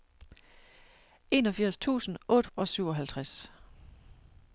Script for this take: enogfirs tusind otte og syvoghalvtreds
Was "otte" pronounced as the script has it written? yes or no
yes